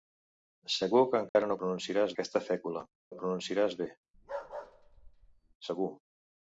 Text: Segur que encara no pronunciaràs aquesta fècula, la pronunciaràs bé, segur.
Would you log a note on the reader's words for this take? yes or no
no